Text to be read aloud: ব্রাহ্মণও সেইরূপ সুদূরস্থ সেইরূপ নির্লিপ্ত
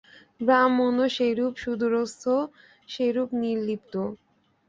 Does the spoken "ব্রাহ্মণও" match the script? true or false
true